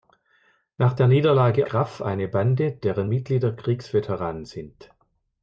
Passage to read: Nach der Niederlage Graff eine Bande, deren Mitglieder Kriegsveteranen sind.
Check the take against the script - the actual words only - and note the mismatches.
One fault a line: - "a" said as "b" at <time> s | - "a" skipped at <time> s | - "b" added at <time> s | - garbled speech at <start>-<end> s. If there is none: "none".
none